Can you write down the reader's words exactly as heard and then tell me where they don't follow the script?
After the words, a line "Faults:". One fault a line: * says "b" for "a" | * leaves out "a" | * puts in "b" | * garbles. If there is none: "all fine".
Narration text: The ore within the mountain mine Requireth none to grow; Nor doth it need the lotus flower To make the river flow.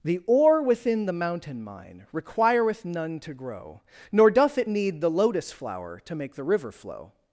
The ore within the mountain mine Requireth none to grow; Nor doth it need the lotus flower To make the river flow.
Faults:
all fine